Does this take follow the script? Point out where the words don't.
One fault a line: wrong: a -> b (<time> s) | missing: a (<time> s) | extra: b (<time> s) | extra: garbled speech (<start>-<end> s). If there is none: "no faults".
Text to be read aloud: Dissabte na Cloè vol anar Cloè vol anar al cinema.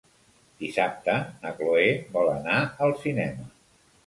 missing: Cloè vol anar (2.6 s)